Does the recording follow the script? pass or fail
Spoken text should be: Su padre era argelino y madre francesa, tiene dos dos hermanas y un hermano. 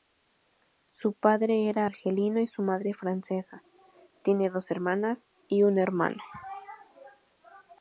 fail